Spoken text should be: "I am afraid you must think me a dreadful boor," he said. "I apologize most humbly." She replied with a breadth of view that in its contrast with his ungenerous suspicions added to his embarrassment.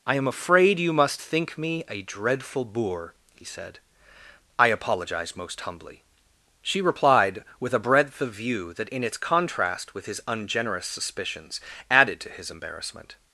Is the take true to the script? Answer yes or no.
yes